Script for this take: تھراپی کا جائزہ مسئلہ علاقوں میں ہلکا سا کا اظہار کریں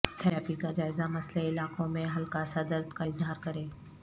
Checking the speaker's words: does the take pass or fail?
fail